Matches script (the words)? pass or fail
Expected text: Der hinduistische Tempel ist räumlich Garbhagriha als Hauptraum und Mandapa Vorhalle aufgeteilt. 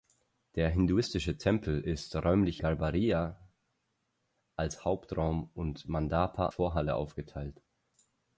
pass